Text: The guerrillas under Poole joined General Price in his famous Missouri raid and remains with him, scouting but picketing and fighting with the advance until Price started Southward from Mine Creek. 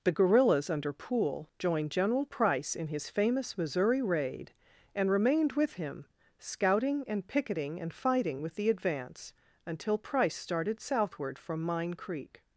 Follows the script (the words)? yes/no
no